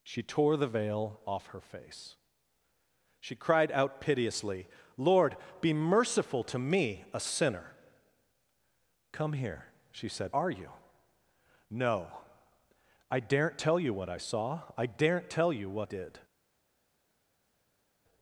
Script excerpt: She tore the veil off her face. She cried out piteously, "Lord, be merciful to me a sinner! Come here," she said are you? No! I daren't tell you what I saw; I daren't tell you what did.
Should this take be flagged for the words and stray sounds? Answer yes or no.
no